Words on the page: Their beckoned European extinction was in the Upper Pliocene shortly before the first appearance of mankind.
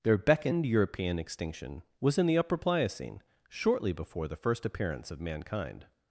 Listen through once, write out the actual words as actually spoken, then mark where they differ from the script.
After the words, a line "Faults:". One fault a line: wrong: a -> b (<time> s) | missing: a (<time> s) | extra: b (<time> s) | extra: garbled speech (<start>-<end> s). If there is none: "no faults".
Their beckoned European extinction was in the Upper Pliocene shortly before the first appearance of mankind.
Faults:
no faults